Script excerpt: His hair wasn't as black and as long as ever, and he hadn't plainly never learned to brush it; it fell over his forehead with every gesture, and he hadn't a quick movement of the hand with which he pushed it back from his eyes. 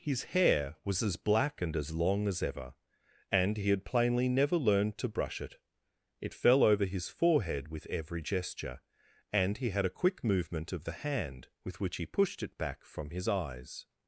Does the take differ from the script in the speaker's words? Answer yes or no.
yes